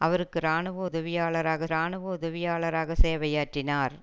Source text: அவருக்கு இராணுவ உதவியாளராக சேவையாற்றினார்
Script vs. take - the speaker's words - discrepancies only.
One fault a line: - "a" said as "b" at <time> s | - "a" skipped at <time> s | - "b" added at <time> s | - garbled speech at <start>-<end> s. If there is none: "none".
- "இராணுவ உதவியாளராக" added at 1.7 s